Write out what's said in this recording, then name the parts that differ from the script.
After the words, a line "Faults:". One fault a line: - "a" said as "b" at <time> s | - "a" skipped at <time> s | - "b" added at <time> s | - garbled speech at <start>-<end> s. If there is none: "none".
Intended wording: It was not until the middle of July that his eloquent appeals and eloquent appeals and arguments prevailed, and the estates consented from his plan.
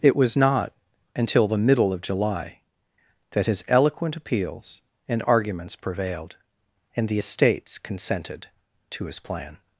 It was not until the middle of July that his eloquent appeals and arguments prevailed, and the estates consented to his plan.
Faults:
- "eloquent appeals and" skipped at 5.2 s
- "from" said as "to" at 8.9 s